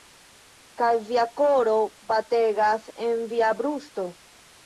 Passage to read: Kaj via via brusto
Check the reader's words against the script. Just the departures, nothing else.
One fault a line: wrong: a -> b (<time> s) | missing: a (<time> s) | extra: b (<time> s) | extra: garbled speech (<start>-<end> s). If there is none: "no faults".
extra: koro bategas en (1.4 s)